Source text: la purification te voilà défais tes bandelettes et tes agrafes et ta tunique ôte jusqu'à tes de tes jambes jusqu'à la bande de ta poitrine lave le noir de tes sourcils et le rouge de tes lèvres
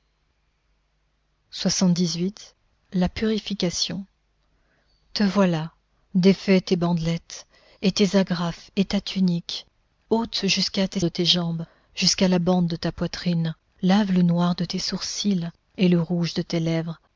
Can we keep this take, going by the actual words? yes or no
yes